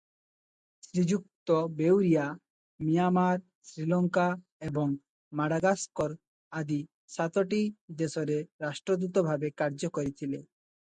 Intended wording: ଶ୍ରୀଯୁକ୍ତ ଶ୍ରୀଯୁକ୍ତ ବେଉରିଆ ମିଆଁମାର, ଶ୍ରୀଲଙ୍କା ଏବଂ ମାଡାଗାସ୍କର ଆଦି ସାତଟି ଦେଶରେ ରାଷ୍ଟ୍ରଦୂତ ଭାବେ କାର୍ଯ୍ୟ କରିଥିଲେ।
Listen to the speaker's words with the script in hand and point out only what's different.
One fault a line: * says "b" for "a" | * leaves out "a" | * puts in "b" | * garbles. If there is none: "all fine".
* leaves out "ଶ୍ରୀଯୁକ୍ତ"